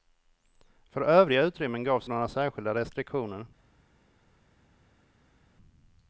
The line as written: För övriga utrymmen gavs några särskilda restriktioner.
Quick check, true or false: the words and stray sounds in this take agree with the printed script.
true